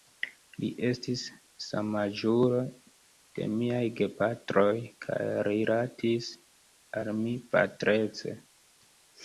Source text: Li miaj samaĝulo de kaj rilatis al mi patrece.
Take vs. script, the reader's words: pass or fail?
fail